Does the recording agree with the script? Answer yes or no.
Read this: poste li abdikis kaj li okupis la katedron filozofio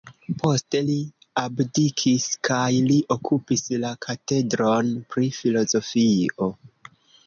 no